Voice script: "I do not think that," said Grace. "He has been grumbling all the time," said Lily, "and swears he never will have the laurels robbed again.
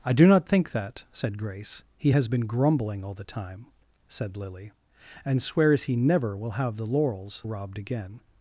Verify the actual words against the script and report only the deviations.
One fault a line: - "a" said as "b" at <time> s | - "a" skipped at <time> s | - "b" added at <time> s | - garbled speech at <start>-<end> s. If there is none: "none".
none